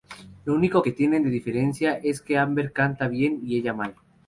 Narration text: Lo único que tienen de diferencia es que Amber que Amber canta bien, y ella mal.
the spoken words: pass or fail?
fail